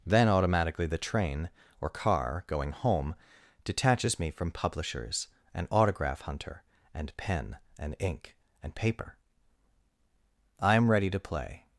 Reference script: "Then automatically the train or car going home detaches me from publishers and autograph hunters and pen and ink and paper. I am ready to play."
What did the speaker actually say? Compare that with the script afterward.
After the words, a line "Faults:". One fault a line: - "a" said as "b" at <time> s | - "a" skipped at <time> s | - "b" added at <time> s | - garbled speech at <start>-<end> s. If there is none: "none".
"Then automatically the train or car going home detaches me from publishers and autograph hunter and pen and ink and paper. I am ready to play."
Faults:
- "hunters" said as "hunter" at 6.2 s